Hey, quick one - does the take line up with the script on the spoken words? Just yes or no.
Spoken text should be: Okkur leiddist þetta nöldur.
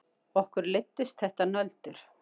yes